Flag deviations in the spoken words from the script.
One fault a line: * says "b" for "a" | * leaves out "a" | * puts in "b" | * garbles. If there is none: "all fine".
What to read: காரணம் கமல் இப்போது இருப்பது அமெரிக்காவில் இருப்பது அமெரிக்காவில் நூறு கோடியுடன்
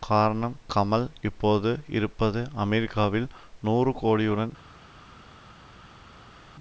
* leaves out "இருப்பது அமெரிக்காவில்"